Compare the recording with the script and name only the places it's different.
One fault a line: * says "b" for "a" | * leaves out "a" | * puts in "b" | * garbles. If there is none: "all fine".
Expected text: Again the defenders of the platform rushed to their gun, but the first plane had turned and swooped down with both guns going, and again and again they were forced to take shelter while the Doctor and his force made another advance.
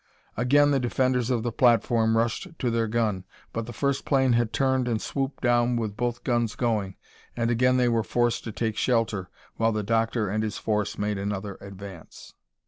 * leaves out "and again"